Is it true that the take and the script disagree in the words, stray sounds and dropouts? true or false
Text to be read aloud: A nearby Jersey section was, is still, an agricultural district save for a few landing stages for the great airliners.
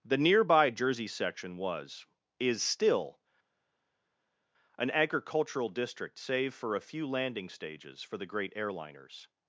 true